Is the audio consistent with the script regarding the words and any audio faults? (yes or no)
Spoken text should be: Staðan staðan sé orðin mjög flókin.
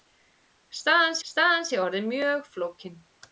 yes